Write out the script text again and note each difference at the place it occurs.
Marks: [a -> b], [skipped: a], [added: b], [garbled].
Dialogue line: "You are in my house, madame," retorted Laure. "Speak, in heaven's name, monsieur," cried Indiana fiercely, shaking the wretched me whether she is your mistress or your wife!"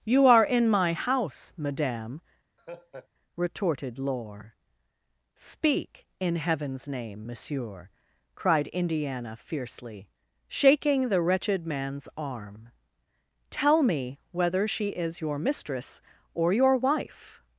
"You are in my house, madame," retorted Laure. "Speak, in heaven's name, monsieur," cried Indiana fiercely, shaking the wretched [added: man's arm tell] me whether she is your mistress or your wife!"